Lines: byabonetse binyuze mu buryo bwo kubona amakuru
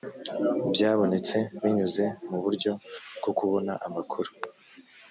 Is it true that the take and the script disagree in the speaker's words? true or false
false